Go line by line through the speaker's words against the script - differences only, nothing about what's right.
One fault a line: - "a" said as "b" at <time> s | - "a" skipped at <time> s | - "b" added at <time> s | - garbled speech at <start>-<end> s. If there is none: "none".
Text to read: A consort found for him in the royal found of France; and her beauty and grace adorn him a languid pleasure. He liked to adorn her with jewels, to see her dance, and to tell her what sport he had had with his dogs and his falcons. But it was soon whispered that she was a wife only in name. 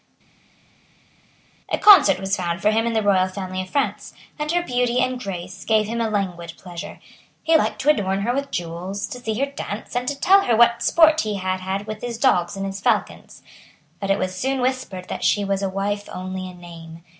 - "was" added at 2.2 s
- "found" said as "family" at 3.3 s
- "adorn" said as "gave" at 5.6 s